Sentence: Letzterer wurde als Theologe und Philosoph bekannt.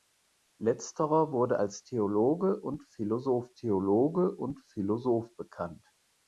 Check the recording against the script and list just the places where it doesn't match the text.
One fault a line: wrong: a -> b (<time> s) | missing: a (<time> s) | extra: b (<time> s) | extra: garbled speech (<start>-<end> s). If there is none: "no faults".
extra: Theologe und Philosoph (3.5 s)